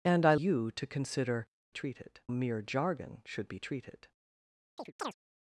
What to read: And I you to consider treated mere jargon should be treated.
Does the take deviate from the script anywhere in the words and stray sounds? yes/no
yes